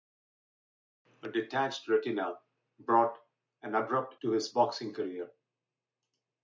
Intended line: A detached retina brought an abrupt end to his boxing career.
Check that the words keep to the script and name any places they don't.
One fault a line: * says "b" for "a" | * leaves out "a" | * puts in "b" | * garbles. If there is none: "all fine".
* leaves out "end"